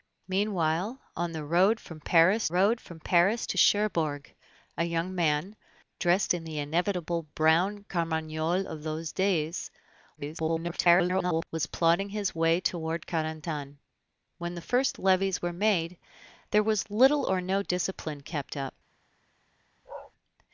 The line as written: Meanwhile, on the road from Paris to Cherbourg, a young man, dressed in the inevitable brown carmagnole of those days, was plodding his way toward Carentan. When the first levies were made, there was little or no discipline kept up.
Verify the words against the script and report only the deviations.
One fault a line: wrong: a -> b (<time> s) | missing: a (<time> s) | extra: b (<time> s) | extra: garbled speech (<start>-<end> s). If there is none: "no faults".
extra: road from Paris (2.5 s)
extra: garbled speech (10.2-11.5 s)